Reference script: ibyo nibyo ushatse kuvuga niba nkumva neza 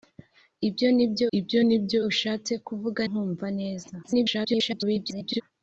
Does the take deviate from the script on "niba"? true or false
true